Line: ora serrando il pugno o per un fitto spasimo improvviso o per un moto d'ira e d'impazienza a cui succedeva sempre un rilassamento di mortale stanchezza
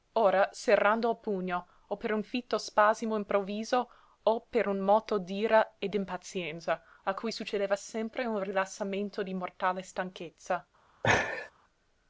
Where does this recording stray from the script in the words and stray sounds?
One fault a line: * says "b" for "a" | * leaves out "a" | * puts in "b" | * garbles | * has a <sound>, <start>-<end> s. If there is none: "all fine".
* has a laugh, 11.0-11.5 s